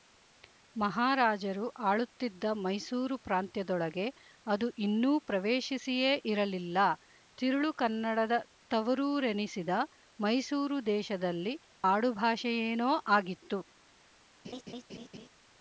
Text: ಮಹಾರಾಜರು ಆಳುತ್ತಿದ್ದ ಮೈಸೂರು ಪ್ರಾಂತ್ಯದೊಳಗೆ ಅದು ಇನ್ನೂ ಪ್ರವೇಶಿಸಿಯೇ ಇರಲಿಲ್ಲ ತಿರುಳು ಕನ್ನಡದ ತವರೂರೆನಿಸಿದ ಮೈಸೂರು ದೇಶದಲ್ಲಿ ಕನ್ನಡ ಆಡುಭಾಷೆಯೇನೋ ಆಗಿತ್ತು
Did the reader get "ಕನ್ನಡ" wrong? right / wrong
wrong